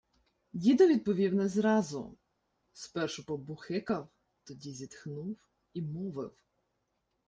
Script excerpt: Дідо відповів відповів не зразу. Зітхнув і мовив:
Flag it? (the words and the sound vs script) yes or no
yes